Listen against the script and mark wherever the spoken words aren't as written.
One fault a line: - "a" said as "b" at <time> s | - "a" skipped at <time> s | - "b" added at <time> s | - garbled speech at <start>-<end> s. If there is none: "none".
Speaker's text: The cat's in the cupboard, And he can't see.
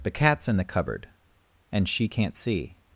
- "he" said as "she" at 1.9 s